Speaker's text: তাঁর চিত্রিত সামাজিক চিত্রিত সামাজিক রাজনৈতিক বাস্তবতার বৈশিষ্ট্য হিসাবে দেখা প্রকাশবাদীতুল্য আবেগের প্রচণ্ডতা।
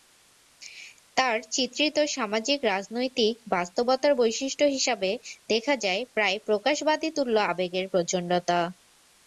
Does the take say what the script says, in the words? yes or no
no